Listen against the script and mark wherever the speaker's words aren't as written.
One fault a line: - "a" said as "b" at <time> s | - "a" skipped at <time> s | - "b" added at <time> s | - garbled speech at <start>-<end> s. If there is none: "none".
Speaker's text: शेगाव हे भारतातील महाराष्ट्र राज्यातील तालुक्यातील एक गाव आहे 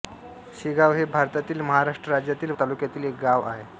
none